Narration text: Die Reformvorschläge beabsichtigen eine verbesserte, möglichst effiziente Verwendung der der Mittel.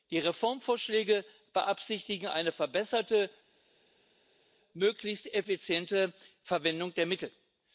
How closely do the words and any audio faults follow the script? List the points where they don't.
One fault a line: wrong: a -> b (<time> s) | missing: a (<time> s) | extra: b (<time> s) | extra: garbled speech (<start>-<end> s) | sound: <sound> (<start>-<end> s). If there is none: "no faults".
missing: der (7.1 s)